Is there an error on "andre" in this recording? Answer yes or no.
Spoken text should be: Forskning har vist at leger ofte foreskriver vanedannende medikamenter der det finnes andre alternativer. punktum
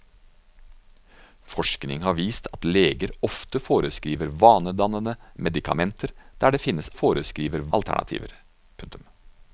yes